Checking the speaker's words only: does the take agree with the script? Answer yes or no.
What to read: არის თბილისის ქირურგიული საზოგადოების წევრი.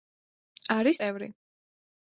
no